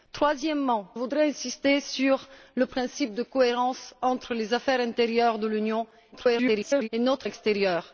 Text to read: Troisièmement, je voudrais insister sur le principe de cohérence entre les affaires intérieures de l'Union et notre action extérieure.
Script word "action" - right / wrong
wrong